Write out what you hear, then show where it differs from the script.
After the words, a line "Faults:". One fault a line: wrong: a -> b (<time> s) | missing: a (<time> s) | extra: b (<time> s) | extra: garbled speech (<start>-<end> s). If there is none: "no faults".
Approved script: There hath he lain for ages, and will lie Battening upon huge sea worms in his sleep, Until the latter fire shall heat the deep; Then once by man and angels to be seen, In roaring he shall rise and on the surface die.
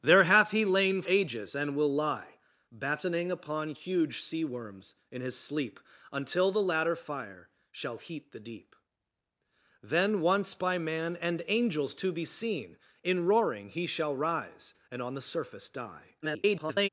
There hath he lain ages, and will lie Battening upon huge sea worms in his sleep, Until the latter fire shall heat the deep; Then once by man and angels to be seen, In roaring he shall rise and on the surface die. [garbled]
Faults:
missing: for (1.0 s)
extra: garbled speech (16.2-16.9 s)